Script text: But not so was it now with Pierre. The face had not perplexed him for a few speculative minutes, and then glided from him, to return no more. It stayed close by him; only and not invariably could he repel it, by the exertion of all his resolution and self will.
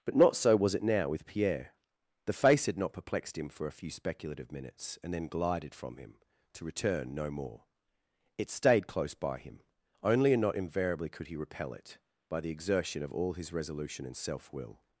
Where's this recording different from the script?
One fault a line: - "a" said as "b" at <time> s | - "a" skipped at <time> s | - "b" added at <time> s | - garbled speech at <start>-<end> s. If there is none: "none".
none